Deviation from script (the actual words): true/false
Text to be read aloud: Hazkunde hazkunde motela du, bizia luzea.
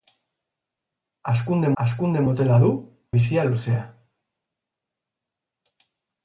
false